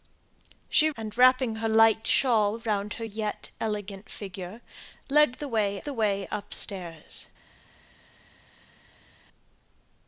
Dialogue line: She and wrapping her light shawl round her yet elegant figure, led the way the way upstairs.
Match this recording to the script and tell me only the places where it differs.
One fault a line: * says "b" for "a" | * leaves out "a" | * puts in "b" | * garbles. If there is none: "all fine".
all fine